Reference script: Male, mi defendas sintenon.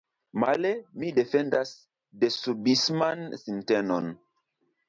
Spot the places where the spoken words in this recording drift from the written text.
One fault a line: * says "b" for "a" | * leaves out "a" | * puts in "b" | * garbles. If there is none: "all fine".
* puts in "desubisman"